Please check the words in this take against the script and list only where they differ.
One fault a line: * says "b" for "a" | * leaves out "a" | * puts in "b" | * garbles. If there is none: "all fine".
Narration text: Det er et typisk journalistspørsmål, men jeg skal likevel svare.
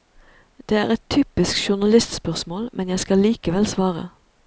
all fine